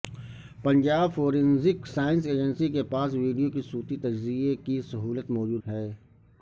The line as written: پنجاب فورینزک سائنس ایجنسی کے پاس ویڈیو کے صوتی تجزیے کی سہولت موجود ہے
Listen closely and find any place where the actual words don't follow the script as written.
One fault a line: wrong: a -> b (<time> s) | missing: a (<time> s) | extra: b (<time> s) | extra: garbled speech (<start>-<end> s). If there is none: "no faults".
no faults